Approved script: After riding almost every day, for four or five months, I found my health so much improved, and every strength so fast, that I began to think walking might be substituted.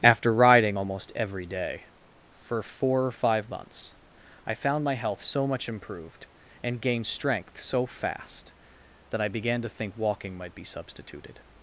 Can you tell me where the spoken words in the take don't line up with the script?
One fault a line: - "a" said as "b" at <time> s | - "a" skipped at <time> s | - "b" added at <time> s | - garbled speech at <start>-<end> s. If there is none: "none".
- "every" said as "gained" at 6.8 s